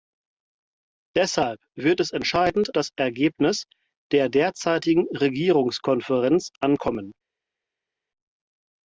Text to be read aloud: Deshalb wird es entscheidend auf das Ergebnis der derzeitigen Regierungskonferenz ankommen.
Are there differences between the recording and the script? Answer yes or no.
yes